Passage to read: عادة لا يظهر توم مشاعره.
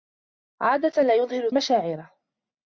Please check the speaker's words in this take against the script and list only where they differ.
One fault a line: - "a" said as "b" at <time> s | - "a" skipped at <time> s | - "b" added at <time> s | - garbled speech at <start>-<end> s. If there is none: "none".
- "توم" skipped at 1.5 s